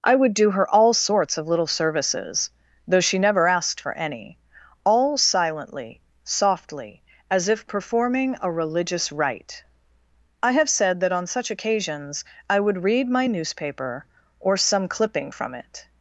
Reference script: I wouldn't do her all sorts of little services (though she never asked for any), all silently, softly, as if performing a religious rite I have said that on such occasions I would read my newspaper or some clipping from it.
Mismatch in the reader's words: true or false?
true